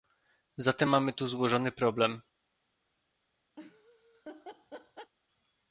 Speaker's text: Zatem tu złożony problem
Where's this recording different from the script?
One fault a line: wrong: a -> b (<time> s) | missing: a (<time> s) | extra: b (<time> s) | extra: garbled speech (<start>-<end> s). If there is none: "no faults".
extra: mamy (0.9 s)